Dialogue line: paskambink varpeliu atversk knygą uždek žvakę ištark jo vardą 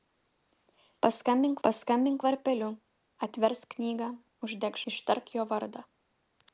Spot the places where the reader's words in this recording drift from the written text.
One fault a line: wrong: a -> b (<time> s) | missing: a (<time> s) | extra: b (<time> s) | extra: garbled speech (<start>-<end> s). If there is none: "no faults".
extra: paskambink (1.7 s)
missing: žvakę (4.8 s)